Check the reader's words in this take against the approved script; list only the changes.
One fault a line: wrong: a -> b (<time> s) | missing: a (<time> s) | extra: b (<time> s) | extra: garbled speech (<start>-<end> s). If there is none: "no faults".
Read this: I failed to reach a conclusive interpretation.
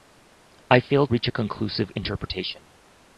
missing: to (1.1 s)